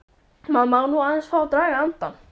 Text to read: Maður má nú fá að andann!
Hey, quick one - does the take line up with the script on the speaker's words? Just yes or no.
no